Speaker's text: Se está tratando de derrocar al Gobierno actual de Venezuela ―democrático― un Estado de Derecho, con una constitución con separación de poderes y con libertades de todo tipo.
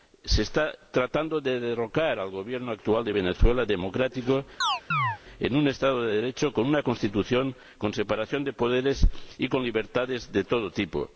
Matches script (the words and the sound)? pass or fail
fail